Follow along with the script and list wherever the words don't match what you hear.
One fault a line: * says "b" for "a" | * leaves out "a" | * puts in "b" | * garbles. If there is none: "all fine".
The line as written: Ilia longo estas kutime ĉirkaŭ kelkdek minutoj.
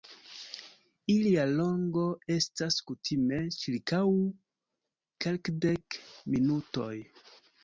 all fine